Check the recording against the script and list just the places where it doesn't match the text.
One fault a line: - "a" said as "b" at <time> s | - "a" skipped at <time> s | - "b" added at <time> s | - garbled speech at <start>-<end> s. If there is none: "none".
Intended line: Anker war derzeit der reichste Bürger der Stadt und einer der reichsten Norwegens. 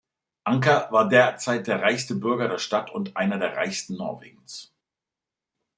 none